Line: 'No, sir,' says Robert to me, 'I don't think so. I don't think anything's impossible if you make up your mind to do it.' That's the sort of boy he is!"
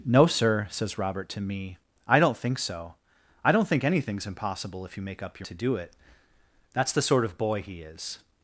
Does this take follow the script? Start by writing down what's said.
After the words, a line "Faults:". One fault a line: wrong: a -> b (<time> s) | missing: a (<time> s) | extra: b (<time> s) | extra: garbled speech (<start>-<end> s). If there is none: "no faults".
'No, sir,' says Robert to me, 'I don't think so. I don't think anything's impossible if you make up your to do it.' That's the sort of boy he is!"
Faults:
missing: mind (5.5 s)